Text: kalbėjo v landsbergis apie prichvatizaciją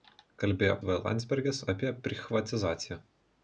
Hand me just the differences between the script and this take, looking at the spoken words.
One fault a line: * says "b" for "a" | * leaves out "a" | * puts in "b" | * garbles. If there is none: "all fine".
all fine